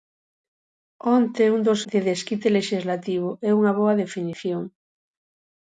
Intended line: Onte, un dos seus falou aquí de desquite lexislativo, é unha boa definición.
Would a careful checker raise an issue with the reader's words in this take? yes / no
yes